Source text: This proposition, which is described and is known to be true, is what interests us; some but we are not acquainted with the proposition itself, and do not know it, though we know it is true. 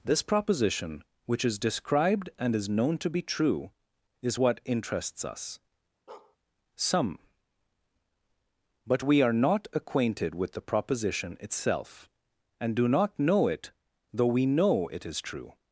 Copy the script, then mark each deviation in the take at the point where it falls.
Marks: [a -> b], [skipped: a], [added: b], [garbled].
This proposition, which is described and is known to be true, is what interests us; some but we are not acquainted with the proposition itself, and do not know it, though we know it is true.